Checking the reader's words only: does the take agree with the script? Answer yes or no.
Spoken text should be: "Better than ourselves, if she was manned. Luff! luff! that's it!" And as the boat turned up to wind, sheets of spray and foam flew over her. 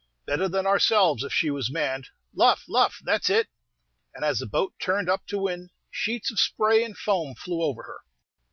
yes